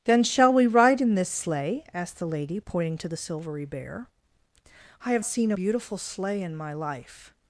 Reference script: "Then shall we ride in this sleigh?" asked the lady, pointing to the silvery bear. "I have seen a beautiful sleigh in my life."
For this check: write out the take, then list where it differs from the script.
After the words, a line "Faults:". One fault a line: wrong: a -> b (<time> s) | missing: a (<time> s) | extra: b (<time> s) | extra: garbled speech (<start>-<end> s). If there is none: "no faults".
"Then shall we ride in this sleigh?" asked the lady, pointing to the silvery bear. "I have seen a beautiful sleigh in my life."
Faults:
no faults